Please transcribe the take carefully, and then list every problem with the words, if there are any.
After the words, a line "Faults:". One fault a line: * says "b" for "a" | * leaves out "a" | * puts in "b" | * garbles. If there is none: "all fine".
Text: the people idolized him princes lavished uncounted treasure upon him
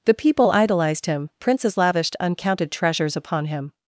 the people idolized him princes lavished uncounted treasures upon him
Faults:
* says "treasures" for "treasure"